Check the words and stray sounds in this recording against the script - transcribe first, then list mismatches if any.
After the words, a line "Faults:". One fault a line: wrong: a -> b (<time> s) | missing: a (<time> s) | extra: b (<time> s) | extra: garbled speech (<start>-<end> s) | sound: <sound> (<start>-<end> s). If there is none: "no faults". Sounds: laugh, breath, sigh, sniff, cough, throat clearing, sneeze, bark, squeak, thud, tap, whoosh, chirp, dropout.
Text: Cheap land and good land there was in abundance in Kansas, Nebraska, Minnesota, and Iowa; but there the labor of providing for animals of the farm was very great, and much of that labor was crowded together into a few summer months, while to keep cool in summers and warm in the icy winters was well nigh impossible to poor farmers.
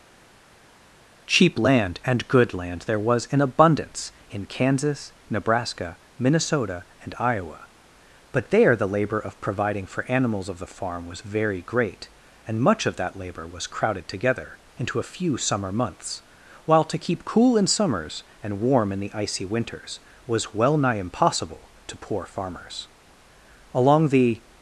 Cheap land and good land there was in abundance in Kansas, Nebraska, Minnesota, and Iowa; but there the labor of providing for animals of the farm was very great, and much of that labor was crowded together into a few summer months, while to keep cool in summers and warm in the icy winters was well nigh impossible to poor farmers. Along the
Faults:
extra: Along the (23.7 s)